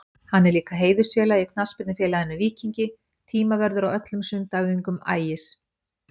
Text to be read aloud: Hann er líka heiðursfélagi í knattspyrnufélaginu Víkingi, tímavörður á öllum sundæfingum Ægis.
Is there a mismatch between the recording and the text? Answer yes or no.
no